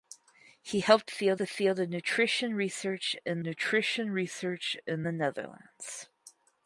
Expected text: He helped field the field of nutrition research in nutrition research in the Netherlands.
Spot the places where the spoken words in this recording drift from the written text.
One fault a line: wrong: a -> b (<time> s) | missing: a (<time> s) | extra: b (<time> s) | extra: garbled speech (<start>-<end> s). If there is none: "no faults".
no faults